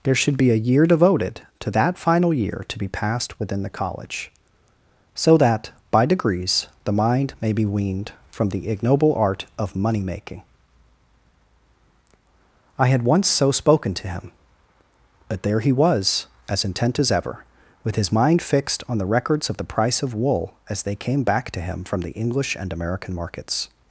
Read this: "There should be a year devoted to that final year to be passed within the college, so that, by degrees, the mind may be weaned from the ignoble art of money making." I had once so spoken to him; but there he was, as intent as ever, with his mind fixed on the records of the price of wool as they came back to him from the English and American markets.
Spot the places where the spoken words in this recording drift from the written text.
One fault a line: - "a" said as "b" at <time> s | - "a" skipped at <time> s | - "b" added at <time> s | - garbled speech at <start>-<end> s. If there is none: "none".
none